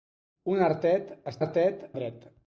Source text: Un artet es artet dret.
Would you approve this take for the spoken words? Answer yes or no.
yes